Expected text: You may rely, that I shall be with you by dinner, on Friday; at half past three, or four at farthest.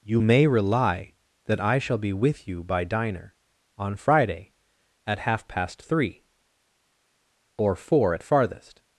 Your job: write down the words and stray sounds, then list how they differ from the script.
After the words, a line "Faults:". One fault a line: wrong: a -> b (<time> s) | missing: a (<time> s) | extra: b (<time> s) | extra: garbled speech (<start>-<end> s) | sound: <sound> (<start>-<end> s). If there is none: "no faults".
You may rely, that I shall be with you by diner, on Friday; at half past three, or four at farthest.
Faults:
wrong: dinner -> diner (2.9 s)